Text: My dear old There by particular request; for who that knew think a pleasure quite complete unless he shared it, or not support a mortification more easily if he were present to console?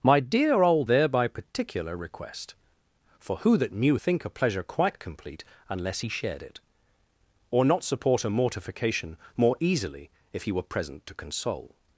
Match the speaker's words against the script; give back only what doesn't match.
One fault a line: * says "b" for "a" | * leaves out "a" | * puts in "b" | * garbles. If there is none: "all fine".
all fine